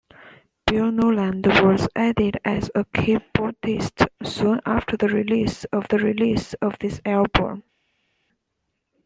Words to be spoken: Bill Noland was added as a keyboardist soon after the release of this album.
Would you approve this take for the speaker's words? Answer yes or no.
no